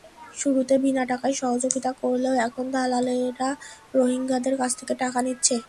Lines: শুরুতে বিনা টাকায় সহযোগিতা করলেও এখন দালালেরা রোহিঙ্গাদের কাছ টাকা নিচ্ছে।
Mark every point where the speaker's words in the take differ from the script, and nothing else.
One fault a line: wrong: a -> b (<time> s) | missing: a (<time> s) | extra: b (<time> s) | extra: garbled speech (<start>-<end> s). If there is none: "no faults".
extra: থেকে (4.8 s)